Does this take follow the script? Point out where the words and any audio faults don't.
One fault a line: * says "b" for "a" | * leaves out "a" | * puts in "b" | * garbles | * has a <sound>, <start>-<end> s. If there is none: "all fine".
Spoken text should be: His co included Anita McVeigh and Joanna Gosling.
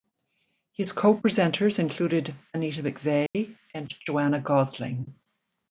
* puts in "presenters"
* has a dropout, 3.3-3.3 s